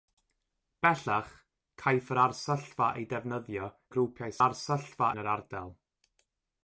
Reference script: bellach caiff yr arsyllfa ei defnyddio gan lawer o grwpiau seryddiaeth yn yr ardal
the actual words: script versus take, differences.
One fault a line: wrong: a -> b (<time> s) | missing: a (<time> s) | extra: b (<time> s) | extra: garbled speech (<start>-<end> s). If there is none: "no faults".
missing: gan lawer (3.7 s)
wrong: seryddiaeth -> arsyllfa (4.4 s)